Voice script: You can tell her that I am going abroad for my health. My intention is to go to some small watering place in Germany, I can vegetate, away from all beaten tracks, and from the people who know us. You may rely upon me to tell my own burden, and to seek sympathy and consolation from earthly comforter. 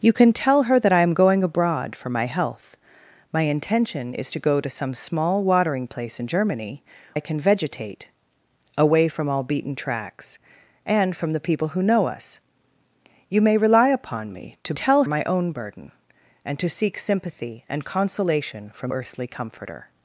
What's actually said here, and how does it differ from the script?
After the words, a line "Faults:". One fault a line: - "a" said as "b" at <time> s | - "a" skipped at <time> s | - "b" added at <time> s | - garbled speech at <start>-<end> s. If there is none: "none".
You can tell her that I am going abroad for my health. My intention is to go to some small watering place in Germany, I can vegetate, away from all beaten tracks, and from the people who know us. You may rely upon me to tell my own burden, and to seek sympathy and consolation from earthly comforter.
Faults:
none